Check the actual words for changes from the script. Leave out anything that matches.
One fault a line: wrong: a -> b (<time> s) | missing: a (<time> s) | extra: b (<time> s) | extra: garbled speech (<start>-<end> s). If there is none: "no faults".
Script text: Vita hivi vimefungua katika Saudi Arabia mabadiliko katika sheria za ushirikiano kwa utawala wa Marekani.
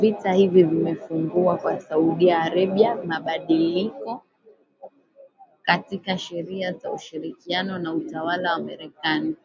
wrong: katika -> kwa (1.5 s)
wrong: kwa -> na (7.8 s)